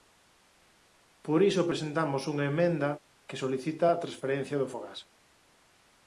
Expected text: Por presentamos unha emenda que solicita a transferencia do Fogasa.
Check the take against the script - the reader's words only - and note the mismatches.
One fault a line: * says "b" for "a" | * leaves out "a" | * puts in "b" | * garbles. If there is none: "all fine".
* puts in "iso"